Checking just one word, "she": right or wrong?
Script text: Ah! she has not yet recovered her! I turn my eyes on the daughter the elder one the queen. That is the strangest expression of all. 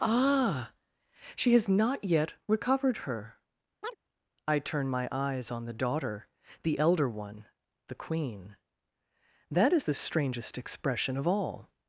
right